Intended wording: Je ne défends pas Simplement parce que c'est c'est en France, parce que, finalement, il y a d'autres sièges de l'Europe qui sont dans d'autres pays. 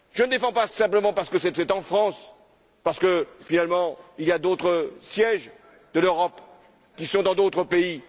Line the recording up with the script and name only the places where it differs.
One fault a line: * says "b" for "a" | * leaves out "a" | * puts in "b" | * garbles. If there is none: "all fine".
all fine